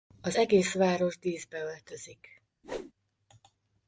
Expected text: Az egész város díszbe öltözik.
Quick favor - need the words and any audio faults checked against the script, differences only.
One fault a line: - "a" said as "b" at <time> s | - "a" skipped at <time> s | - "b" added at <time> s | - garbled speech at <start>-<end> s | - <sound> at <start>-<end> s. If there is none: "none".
- whoosh at 2.6-2.9 s